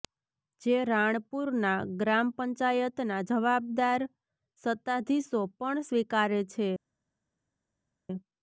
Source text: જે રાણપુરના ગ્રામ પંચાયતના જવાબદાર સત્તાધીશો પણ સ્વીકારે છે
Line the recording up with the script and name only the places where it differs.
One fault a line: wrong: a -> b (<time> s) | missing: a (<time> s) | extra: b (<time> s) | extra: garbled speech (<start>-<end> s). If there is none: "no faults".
no faults